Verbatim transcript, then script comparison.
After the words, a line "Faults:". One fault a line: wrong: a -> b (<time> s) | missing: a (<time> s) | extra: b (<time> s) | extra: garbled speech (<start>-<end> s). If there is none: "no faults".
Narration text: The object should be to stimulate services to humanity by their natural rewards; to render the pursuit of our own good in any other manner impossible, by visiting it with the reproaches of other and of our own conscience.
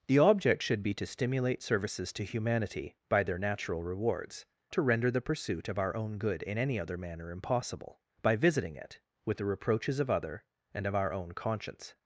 The object should be to stimulate services to humanity by their natural rewards; to render the pursuit of our own good in any other manner impossible, by visiting it with the reproaches of other and of our own conscience.
Faults:
no faults